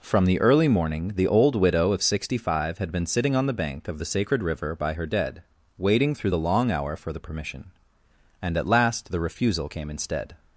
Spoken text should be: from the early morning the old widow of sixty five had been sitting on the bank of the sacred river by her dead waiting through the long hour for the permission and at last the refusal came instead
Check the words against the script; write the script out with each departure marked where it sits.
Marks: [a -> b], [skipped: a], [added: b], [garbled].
from the early morning the old widow of sixty five had been sitting on the bank of the sacred river by her dead waiting through the long hour for the permission and at last the refusal came instead